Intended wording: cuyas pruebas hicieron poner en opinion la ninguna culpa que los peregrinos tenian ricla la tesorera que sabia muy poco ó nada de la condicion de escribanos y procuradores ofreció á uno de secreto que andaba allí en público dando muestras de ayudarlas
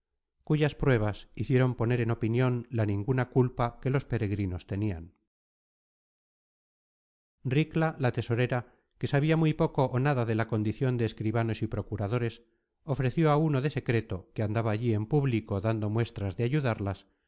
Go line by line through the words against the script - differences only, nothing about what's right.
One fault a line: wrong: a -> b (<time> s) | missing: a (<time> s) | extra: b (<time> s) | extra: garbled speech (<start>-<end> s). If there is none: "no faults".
no faults